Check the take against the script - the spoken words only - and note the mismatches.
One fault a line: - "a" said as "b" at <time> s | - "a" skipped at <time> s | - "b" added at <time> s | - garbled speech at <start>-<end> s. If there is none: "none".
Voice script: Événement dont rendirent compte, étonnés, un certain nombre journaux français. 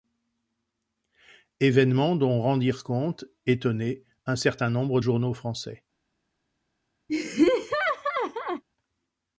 none